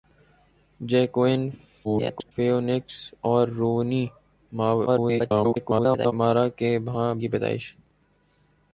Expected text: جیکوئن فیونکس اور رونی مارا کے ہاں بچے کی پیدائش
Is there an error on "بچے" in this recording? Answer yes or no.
yes